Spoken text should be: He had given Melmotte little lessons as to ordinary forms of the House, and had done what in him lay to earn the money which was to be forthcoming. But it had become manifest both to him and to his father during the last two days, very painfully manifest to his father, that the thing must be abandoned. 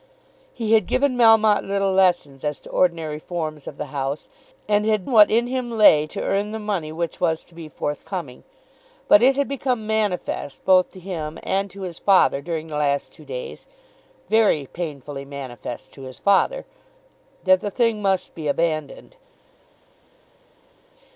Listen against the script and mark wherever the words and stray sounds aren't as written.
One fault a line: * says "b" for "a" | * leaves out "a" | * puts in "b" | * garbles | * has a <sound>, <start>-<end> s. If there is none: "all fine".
* leaves out "done"